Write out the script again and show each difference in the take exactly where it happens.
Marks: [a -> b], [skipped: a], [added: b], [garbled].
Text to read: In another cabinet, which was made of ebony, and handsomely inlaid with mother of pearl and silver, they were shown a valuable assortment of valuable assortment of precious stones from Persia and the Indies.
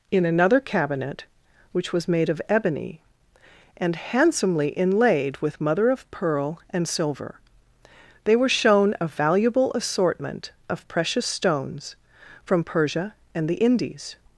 In another cabinet, which was made of ebony, and handsomely inlaid with mother of pearl and silver, they were shown a valuable assortment of [skipped: valuable assortment of] precious stones from Persia and the Indies.